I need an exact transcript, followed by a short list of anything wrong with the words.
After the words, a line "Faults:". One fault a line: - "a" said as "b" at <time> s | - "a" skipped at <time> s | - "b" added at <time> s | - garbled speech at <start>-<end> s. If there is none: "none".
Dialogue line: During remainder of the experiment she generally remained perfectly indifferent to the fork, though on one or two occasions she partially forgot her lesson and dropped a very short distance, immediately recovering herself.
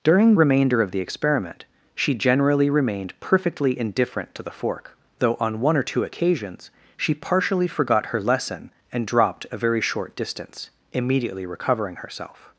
During remainder of the experiment she generally remained perfectly indifferent to the fork, though on one or two occasions she partially forgot her lesson and dropped a very short distance, immediately recovering herself.
Faults:
none